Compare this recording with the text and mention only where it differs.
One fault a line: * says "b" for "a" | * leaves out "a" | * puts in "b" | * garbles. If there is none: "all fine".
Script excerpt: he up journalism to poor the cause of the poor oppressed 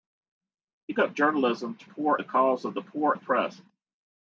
all fine